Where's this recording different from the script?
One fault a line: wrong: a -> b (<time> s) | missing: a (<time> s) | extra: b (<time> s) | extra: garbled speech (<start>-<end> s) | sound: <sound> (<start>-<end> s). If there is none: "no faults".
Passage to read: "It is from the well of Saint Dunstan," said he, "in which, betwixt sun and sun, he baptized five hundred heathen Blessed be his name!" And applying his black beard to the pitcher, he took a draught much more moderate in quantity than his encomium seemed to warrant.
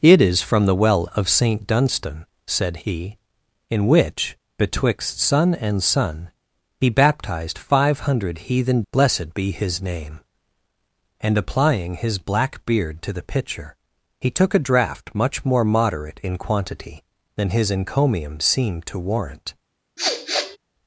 sound: sniff (20.0-20.6 s)